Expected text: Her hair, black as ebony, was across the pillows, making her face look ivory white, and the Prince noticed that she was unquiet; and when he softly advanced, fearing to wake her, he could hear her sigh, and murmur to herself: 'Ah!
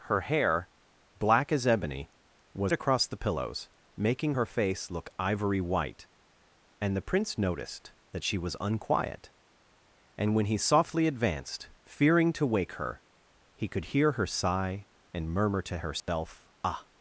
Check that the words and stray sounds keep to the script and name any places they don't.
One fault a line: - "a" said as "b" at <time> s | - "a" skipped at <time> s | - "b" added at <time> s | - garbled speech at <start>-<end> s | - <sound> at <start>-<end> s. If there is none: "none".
- dropout at 16.0-16.1 s